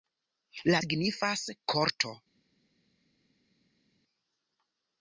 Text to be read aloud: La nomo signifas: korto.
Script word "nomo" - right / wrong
wrong